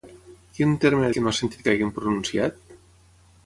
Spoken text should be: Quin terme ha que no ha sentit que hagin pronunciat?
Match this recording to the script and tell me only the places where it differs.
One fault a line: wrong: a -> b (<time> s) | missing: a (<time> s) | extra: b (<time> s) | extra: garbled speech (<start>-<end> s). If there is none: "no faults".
no faults